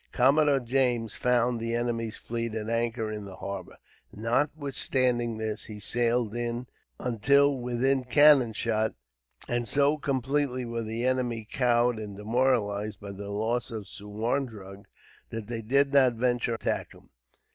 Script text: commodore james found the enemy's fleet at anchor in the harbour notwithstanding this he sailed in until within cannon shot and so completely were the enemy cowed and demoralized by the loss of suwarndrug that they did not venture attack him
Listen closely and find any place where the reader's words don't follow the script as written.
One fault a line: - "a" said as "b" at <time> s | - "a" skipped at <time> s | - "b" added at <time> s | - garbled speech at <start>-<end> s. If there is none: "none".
none